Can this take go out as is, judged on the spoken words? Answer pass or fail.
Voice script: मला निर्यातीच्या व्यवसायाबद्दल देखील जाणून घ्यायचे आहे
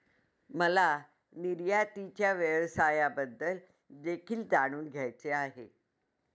pass